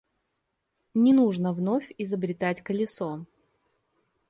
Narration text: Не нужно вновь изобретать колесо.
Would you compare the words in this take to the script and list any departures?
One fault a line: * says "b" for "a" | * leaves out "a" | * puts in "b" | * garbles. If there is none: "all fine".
all fine